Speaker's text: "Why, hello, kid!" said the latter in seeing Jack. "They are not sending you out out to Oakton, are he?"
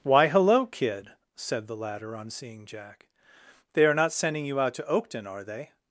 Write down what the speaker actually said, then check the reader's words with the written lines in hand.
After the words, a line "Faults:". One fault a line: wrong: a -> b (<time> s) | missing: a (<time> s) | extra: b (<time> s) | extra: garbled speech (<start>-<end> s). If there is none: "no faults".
"Why, hello, kid!" said the latter on seeing Jack. "They are not sending you out to Oakton, are they?"
Faults:
wrong: in -> on (2.1 s)
missing: out (4.7 s)
wrong: he -> they (5.4 s)